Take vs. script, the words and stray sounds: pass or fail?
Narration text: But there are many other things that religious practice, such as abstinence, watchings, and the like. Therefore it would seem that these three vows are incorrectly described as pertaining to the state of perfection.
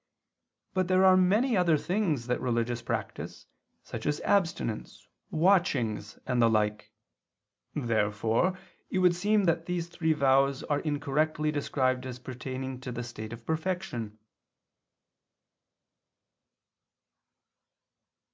pass